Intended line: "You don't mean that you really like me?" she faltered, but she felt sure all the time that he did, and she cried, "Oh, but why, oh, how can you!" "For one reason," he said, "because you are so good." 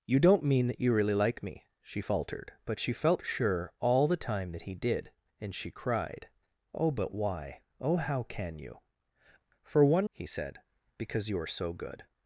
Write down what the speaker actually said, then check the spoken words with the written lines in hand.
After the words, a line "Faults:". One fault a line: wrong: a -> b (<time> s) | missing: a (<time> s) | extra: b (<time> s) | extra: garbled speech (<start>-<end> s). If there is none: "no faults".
"You don't mean that you really like me?" she faltered, but she felt sure all the time that he did, and she cried, "Oh, but why, oh, how can you!" "For one," he said, "because you are so good."
Faults:
missing: reason (10.1 s)